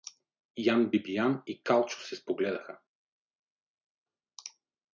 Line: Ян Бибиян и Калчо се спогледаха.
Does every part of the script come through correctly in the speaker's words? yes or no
yes